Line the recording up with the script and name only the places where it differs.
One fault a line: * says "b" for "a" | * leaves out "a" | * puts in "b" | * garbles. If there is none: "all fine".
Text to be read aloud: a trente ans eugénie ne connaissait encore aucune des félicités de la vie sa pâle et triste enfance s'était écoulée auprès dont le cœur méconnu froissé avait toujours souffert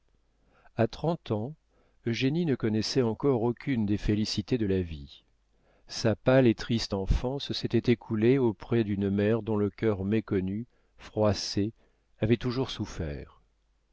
* puts in "d'une mère"